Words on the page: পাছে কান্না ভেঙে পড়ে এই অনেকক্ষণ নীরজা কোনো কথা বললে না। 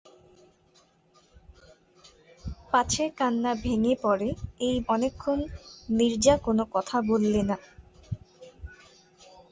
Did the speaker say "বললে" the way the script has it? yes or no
yes